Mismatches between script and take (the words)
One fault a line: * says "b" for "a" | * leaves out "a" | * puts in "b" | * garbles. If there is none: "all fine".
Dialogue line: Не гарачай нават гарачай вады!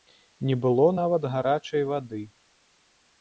* says "было" for "гарачай"